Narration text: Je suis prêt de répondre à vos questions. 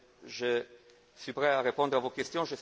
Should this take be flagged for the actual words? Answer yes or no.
yes